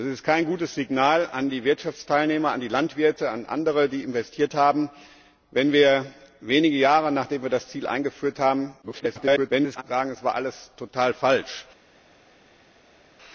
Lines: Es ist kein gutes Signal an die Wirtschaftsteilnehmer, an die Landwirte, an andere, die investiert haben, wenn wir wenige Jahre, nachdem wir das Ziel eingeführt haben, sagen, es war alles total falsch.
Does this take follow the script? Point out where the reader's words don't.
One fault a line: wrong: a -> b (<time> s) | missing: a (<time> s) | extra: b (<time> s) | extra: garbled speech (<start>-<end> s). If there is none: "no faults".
extra: garbled speech (8.8-9.8 s)